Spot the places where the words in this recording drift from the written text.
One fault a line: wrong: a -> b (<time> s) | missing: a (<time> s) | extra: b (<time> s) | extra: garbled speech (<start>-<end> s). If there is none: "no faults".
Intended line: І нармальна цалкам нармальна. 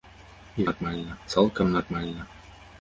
no faults